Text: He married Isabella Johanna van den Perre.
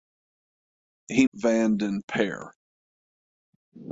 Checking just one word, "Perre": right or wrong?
right